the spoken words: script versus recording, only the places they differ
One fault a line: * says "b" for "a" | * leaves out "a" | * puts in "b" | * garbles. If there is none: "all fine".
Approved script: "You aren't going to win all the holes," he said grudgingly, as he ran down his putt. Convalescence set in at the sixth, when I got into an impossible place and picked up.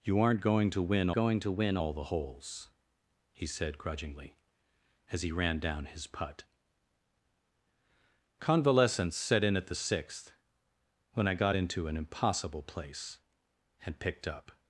* puts in "going to win"